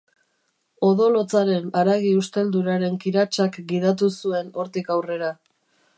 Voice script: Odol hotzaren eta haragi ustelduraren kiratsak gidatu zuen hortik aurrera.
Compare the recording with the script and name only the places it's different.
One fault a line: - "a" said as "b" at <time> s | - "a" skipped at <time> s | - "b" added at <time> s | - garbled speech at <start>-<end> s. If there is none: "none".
- "eta" skipped at 1.7 s